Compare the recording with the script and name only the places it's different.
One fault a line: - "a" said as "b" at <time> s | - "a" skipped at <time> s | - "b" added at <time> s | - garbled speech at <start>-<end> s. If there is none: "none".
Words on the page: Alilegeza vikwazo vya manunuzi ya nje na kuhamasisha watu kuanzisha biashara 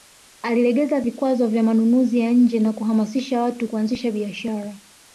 none